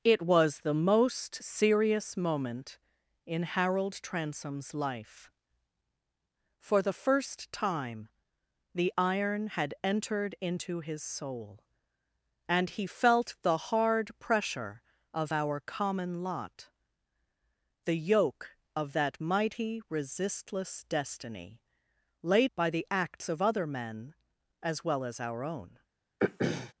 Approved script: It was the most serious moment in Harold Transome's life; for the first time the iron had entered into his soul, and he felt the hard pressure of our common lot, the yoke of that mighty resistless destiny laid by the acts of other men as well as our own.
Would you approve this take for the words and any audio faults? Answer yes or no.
no